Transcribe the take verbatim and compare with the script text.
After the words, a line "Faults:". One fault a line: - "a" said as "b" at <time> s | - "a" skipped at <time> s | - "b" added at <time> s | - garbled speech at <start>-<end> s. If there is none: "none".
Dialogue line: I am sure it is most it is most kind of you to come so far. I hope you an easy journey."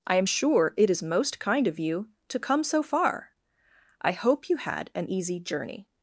I am sure it is most kind of you to come so far. I hope you had an easy journey."
Faults:
- "it is most" skipped at 1.4 s
- "had" added at 4.6 s